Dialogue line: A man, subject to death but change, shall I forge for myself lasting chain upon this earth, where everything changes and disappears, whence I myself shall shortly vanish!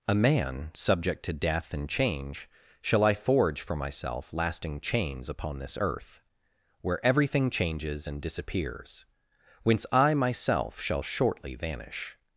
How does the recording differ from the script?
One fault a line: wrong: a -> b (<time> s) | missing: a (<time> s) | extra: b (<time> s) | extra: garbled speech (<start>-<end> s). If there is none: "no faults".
wrong: but -> and (1.7 s)
wrong: chain -> chains (4.8 s)